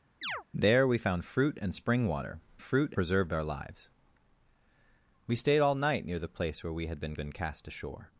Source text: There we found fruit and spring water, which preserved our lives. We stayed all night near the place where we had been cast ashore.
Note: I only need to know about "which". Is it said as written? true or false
false